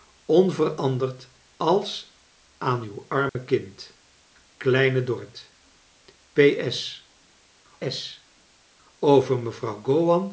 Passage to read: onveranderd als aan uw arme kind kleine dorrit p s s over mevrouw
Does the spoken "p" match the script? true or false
true